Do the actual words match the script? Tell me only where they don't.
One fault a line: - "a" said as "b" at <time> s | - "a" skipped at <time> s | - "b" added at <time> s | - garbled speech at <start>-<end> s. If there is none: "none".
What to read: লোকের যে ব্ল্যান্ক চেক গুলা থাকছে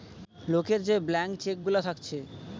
none